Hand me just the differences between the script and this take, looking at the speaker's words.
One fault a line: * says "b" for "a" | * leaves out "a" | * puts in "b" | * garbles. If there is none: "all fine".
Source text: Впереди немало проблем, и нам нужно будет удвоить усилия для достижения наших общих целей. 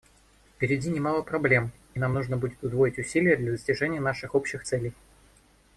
all fine